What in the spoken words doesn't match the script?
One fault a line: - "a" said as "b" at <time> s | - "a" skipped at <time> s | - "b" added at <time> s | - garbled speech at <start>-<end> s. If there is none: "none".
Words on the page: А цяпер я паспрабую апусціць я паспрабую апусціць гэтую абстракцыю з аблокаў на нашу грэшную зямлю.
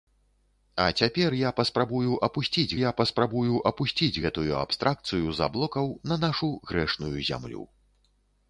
none